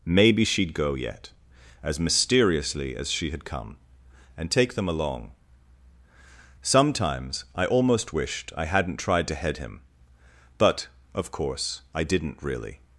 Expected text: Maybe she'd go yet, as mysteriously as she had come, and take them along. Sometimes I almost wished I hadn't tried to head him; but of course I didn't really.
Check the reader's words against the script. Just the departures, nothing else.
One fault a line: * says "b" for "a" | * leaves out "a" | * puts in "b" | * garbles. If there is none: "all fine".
all fine